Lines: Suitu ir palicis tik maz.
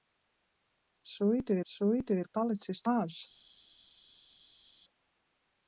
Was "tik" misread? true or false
true